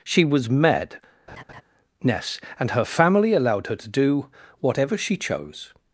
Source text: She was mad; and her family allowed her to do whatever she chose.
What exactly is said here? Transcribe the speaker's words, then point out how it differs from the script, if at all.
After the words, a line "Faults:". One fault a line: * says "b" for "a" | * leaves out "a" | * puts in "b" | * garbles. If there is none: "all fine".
She was mad; ness and her family allowed her to do whatever she chose.
Faults:
* puts in "ness"